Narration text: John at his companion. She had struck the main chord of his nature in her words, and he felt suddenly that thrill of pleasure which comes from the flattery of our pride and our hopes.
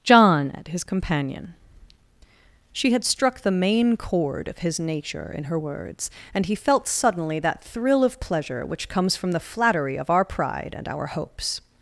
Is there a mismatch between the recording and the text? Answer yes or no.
no